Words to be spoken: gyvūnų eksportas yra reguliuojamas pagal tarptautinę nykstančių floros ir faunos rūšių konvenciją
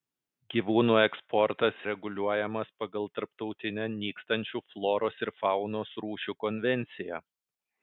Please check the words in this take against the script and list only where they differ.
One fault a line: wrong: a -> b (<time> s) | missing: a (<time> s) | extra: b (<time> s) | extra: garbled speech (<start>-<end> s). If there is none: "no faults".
missing: yra (1.8 s)